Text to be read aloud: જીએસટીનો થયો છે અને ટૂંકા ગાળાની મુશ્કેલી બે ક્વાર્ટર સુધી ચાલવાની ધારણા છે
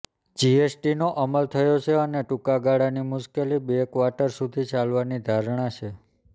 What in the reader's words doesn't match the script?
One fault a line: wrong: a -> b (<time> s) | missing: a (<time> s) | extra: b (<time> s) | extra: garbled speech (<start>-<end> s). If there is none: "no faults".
extra: અમલ (1.2 s)